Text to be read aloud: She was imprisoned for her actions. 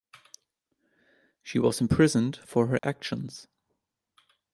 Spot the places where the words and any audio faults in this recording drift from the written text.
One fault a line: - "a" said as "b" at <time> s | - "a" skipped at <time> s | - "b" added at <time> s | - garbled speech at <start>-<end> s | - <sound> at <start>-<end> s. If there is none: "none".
- dropout at 2.8-2.8 s